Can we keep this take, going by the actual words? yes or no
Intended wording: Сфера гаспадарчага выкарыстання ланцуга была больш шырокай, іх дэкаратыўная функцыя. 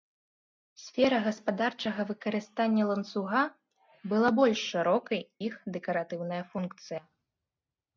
yes